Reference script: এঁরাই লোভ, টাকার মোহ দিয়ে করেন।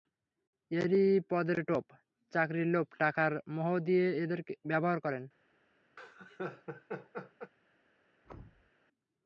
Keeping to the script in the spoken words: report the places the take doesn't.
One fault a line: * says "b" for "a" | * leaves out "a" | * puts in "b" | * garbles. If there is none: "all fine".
* puts in "পদের টোপ চাকরির"
* puts in "এদের ব্যবহার"